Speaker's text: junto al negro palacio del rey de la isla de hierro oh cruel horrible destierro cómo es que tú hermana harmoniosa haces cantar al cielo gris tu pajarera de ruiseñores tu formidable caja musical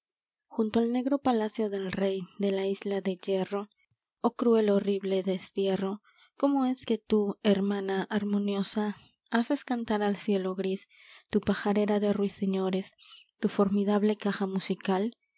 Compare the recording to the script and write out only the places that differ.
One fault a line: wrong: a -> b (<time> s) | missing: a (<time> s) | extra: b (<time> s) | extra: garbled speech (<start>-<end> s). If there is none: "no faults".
no faults